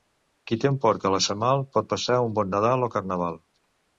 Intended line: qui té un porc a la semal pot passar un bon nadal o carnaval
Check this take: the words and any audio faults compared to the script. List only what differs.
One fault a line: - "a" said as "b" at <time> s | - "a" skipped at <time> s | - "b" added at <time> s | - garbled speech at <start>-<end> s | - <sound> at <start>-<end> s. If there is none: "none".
none